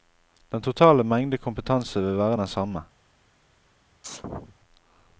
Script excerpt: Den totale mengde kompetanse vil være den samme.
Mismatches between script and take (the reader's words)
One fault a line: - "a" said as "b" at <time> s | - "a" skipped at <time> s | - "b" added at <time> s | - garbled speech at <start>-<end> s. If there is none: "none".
none